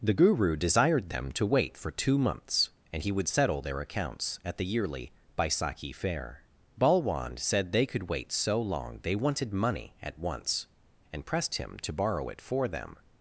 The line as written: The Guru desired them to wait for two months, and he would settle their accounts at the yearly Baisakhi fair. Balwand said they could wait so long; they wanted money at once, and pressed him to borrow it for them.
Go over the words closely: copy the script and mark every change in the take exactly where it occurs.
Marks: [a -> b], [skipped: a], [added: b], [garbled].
The Guru desired them to wait for two months, and he would settle their accounts at the yearly Baisakhi fair. Balwand said they could wait so long; they wanted money at once, and pressed him to borrow it for them.